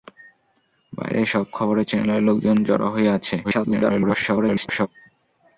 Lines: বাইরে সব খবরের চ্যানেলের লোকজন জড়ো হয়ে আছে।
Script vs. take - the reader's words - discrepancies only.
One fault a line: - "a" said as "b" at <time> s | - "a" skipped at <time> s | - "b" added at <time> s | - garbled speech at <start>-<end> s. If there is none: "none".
- garbled speech at 3.4-4.9 s